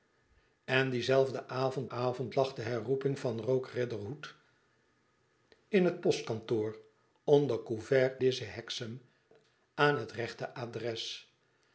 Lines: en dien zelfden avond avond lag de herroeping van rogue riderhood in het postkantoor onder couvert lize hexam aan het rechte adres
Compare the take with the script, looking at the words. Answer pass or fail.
pass